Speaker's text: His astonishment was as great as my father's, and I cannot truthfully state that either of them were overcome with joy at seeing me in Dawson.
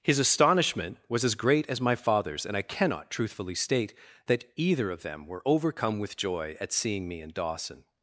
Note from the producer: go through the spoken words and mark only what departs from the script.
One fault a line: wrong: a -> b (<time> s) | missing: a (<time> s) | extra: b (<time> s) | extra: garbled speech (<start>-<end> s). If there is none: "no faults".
no faults